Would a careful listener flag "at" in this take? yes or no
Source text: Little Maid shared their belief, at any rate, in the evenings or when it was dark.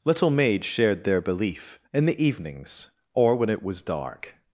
yes